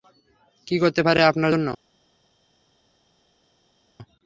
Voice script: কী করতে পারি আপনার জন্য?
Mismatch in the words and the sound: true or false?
false